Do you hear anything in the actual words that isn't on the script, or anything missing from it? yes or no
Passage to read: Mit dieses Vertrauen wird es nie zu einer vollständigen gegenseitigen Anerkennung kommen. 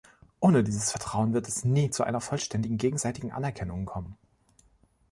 yes